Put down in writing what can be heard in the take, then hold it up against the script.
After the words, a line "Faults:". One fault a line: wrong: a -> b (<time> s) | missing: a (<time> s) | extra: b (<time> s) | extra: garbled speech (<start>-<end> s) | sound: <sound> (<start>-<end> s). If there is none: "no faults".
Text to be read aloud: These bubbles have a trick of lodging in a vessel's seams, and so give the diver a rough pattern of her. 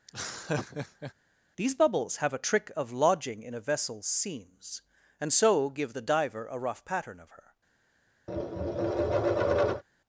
These bubbles have a trick of lodging in a vessel's seams, and so give the diver a rough pattern of her.
Faults:
sound: laugh (0.1-1.1 s)
sound: tap (8.3-9.8 s)